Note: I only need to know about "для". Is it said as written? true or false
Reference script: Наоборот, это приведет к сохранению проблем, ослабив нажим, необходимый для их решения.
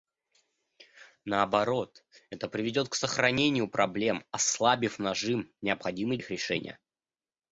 false